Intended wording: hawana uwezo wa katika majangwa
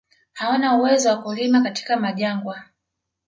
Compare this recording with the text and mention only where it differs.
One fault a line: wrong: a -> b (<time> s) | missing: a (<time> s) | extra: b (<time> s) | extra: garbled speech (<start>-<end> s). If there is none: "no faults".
extra: kulima (1.2 s)